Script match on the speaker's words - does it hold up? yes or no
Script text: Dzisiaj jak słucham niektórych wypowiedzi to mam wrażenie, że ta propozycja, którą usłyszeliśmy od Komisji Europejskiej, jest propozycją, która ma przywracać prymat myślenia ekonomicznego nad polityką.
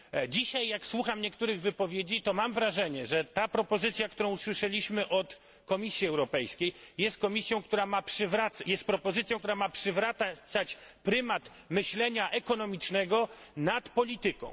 yes